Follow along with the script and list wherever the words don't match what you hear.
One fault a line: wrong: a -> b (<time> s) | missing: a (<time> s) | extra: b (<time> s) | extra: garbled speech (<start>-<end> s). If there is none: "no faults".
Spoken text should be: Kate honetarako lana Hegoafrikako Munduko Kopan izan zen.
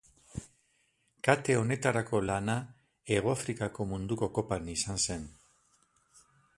no faults